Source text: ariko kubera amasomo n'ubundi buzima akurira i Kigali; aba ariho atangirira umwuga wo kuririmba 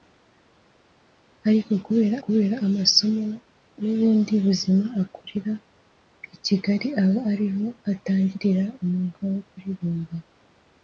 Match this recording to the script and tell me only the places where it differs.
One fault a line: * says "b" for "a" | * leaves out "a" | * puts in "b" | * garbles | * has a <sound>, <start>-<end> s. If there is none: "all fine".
* puts in "kubera"